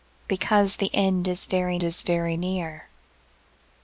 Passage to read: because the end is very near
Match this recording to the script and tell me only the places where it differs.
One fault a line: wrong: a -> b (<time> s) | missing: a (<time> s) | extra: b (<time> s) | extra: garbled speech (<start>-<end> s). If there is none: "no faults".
extra: is very (1.8 s)